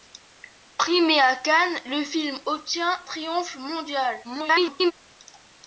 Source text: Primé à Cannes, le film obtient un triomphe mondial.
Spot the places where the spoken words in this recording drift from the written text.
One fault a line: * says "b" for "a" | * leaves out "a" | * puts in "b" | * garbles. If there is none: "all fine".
* leaves out "un"
* garbles